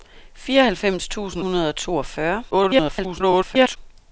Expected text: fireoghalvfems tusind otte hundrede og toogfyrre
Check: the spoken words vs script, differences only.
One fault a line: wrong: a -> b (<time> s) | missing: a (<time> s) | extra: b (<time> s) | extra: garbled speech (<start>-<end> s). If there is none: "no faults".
missing: otte (1.4 s)
extra: garbled speech (2.5-3.8 s)